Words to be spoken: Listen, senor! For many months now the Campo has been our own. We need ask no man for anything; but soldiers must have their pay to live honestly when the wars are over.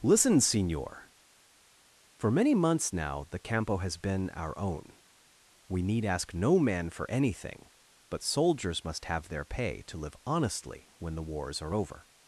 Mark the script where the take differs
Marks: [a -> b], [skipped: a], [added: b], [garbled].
Listen, senor! For many months now the Campo has been our own. We need ask no man for anything; but soldiers must have their pay to live honestly when the wars are over.